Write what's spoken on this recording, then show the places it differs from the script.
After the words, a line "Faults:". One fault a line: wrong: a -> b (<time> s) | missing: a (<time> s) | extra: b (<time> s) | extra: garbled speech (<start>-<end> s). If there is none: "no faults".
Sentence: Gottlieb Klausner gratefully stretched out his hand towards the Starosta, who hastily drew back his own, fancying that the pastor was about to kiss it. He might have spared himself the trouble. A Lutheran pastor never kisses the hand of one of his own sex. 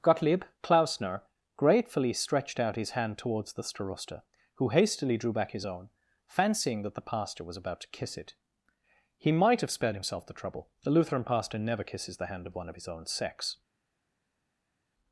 Gottlieb Klausner gratefully stretched out his hand towards the Starosta, who hastily drew back his own, fancying that the pastor was about to kiss it. He might have spared himself the trouble. The Lutheran pastor never kisses the hand of one of his own sex.
Faults:
wrong: A -> The (10.8 s)